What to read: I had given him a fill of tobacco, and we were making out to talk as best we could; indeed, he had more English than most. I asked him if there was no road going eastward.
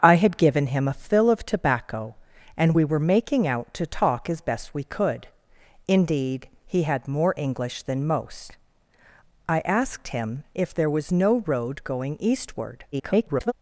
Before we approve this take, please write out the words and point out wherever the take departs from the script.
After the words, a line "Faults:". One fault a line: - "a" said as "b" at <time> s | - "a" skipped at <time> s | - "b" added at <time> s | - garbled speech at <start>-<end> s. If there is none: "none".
I had given him a fill of tobacco, and we were making out to talk as best we could; indeed, he had more English than most. I asked him if there was no road going eastward. [garbled]
Faults:
- garbled speech at 12.9-13.5 s